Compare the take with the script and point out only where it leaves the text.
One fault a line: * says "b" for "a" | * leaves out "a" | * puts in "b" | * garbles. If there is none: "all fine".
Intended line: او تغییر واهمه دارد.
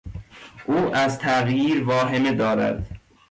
* puts in "از"